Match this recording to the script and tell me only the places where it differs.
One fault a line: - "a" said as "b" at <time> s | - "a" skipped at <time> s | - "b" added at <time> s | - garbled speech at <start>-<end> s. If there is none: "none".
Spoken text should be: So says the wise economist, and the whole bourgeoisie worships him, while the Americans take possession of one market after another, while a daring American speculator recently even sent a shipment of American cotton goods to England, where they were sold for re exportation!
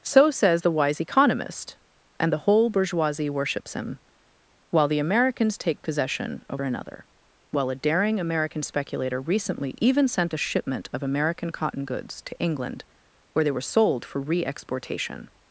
- "one market after" skipped at 6.6 s